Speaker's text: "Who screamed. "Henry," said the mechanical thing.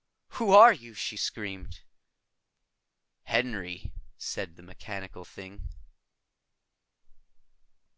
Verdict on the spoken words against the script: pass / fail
fail